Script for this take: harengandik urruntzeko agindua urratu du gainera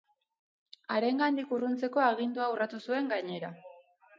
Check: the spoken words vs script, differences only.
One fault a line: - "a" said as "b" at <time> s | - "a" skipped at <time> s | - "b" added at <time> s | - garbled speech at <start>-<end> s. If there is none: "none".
- "du" said as "zuen" at 2.9 s